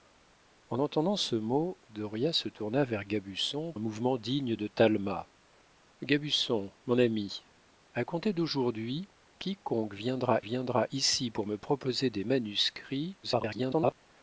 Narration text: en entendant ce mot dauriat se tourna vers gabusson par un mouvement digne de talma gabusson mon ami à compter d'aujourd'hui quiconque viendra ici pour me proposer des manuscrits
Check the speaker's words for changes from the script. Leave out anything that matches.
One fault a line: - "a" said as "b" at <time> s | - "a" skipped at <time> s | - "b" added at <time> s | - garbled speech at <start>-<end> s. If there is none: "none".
- "par" skipped at 3.7 s
- "viendra" added at 10.4 s
- garbled speech at 13.2-14.0 s